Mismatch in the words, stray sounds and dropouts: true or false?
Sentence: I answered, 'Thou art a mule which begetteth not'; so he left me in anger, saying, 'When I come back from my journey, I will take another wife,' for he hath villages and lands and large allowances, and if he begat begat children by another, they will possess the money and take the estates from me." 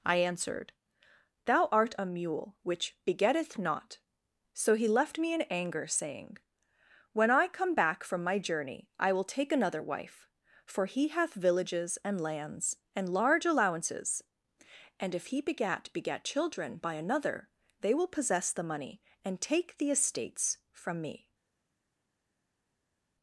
false